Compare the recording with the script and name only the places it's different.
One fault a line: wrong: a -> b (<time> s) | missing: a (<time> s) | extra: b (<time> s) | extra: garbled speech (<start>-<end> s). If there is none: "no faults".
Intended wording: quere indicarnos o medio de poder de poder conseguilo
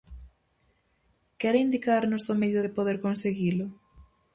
missing: de poder (3.0 s)